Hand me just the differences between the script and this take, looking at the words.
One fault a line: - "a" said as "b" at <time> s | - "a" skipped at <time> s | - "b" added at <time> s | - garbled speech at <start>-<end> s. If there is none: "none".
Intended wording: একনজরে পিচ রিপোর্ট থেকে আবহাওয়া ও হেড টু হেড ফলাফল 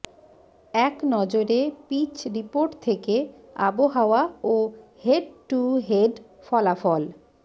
none